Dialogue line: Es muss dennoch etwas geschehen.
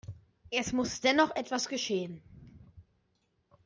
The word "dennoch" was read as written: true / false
true